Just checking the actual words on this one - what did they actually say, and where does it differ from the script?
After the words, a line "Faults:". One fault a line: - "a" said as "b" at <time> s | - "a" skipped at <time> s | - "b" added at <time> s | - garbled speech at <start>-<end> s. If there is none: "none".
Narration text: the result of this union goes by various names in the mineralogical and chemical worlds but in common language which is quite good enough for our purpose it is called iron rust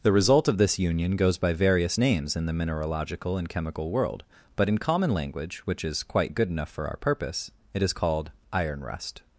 the result of this union goes by various names in the mineralogical and chemical world but in common language which is quite good enough for our purpose it is called iron rust
Faults:
- "worlds" said as "world" at 3.9 s